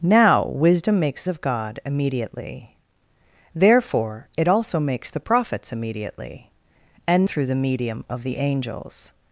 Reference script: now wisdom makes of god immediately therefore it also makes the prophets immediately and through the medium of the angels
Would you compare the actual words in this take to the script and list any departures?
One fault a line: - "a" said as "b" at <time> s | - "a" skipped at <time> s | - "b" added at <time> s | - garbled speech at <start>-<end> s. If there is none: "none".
none